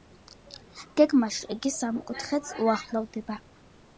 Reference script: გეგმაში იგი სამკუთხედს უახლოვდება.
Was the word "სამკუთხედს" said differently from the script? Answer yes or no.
no